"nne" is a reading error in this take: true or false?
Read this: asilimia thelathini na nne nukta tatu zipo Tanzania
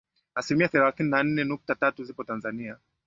false